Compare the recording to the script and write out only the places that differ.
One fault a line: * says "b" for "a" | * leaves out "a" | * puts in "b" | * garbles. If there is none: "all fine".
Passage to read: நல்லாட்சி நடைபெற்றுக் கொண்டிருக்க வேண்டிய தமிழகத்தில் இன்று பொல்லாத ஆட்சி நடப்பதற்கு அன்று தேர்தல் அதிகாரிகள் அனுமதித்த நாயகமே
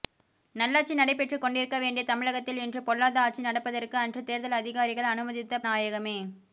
all fine